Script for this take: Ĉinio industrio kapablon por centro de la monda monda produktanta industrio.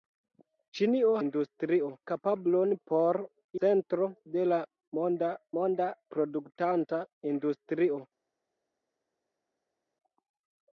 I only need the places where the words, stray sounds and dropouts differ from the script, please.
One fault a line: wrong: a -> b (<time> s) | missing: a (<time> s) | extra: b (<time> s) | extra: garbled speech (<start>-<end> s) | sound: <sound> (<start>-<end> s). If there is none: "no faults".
no faults